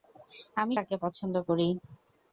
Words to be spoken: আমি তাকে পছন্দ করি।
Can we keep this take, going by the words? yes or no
yes